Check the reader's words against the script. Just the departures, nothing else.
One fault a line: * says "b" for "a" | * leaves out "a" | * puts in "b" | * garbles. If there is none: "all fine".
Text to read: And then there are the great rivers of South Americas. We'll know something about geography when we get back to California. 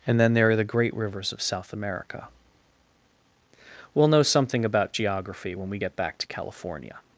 * says "America" for "Americas"